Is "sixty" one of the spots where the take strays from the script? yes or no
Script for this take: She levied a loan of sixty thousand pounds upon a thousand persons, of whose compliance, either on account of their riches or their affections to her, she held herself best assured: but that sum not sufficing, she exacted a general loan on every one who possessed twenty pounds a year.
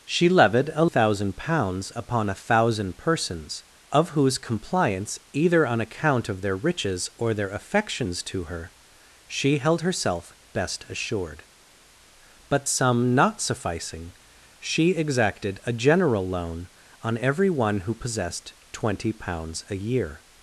yes